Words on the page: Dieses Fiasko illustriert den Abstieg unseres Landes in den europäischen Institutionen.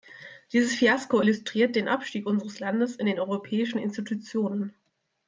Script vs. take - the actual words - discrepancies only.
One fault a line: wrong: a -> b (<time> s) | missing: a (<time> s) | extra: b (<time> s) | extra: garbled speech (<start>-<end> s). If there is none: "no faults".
no faults